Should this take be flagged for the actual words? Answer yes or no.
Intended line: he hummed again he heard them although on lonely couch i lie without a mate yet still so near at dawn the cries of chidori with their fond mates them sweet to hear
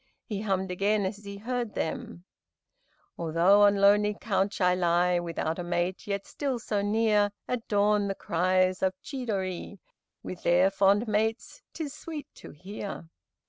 yes